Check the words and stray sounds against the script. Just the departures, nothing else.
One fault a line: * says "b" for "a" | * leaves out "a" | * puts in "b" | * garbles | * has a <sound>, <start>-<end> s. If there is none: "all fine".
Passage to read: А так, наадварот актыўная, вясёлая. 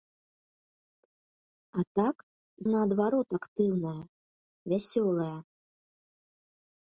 all fine